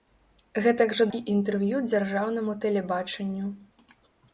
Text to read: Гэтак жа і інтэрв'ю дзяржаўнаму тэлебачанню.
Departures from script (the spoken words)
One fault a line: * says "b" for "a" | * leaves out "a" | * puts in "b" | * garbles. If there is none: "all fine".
all fine